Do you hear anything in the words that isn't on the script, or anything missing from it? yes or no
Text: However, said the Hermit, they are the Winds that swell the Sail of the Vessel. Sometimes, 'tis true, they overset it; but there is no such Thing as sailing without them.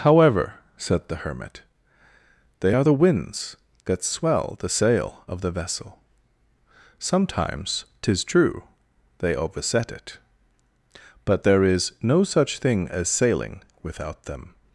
no